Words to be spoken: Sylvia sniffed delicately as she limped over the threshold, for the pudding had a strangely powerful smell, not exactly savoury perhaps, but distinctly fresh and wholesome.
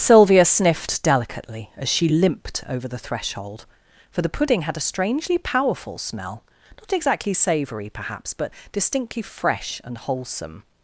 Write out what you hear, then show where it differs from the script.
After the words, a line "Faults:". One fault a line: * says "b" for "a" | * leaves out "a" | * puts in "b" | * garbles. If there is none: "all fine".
Sylvia sniffed delicately as she limped over the threshold, for the pudding had a strangely powerful smell, not exactly savoury perhaps, but distinctly fresh and wholesome.
Faults:
all fine